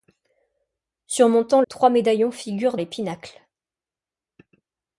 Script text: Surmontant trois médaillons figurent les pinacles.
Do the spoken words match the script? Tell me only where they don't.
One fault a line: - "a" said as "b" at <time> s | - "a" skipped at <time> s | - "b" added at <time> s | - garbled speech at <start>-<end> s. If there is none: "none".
none